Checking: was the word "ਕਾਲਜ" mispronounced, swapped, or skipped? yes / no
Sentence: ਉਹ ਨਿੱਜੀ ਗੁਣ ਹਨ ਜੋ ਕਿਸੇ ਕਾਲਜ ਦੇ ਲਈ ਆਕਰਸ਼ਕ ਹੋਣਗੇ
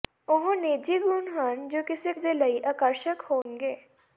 yes